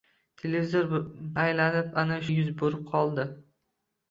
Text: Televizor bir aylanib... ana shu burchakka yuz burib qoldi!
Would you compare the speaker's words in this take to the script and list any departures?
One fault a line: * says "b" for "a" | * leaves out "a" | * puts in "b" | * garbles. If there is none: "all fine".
* leaves out "bir"
* leaves out "shu burchakka"